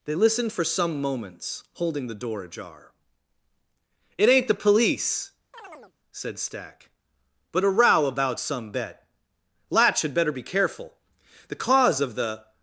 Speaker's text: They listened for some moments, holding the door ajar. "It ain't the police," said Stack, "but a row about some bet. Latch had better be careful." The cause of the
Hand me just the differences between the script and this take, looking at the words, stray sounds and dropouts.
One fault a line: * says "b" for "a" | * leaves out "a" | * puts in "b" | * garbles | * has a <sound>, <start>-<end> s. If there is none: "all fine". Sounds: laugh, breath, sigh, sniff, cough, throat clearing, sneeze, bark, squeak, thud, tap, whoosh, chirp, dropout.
* has a chirp, 5.5-5.9 s